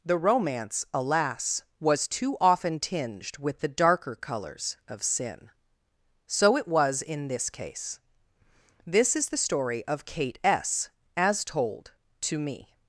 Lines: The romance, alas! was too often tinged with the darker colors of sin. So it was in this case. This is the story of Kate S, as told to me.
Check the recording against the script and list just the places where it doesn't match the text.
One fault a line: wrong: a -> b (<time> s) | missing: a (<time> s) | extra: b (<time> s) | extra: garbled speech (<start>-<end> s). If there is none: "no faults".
no faults